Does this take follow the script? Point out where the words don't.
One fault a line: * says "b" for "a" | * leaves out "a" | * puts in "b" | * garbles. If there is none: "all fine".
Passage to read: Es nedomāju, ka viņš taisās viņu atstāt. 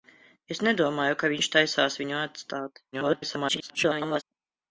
* garbles